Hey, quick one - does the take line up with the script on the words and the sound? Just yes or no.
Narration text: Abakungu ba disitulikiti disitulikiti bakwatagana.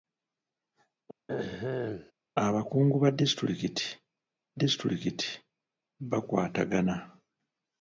no